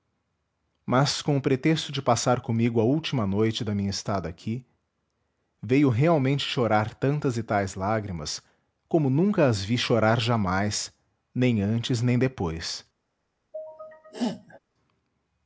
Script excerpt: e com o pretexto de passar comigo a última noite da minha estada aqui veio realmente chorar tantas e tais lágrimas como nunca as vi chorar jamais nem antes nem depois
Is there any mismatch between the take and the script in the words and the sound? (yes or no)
yes